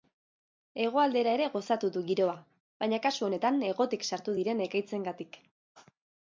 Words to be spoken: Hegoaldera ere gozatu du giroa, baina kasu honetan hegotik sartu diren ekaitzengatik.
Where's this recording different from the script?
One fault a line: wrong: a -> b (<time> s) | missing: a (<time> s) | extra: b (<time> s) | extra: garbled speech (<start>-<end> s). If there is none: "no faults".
no faults